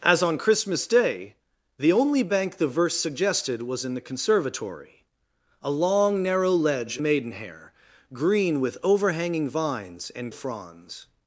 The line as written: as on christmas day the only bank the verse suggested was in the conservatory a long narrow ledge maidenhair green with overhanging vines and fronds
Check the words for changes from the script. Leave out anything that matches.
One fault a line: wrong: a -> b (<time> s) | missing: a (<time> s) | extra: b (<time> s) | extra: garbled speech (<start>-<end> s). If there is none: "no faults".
no faults